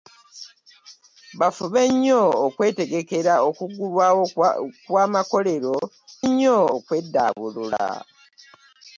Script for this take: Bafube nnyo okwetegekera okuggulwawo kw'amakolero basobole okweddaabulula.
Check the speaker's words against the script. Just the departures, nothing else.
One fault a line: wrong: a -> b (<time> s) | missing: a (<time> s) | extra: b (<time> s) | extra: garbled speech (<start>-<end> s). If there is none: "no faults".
wrong: basobole -> nnyo (6.3 s)